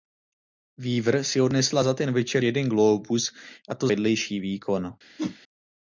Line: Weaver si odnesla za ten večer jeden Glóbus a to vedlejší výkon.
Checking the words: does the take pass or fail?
pass